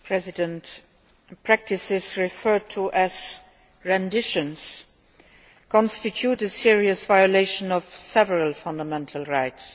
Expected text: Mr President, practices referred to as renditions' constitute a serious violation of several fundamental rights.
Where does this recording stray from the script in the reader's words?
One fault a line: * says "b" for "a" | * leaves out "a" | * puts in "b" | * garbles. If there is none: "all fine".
all fine